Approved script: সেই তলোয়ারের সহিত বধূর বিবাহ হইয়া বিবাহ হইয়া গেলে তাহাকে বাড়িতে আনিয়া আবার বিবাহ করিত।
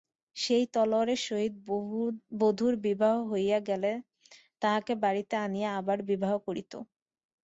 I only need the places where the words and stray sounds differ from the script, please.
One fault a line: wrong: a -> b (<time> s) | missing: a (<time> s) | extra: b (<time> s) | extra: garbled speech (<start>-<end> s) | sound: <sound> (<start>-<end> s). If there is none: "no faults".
missing: বিবাহ হইয়া (3.6 s)